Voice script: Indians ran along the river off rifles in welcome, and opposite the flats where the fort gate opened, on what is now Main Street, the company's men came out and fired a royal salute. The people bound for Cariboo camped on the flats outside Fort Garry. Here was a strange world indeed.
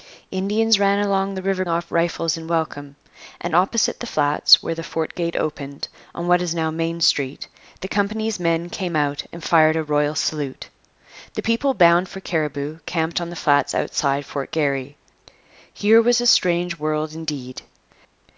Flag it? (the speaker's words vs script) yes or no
no